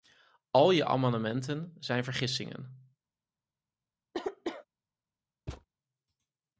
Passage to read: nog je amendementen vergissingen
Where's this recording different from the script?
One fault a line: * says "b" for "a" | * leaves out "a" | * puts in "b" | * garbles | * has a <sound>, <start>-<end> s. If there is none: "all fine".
* says "al" for "nog"
* puts in "zijn"
* has a cough, 4.1-4.7 s
* has a thud, 5.5-5.7 s